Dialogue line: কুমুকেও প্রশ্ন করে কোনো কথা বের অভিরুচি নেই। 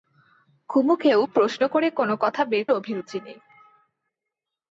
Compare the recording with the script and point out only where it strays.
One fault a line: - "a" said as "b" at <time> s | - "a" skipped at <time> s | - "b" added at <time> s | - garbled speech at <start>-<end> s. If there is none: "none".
none